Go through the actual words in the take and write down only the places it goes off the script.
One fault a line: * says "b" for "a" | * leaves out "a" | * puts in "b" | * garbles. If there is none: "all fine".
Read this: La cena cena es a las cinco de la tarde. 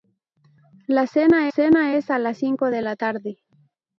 all fine